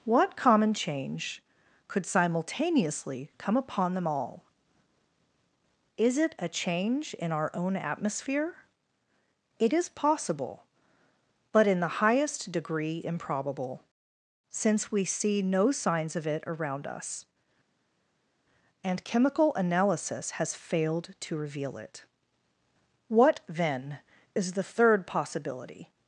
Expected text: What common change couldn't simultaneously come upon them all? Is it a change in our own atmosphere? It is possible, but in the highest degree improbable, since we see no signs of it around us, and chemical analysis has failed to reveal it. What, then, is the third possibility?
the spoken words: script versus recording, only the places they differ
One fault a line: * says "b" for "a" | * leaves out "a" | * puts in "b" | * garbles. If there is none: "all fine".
* says "could" for "couldn't"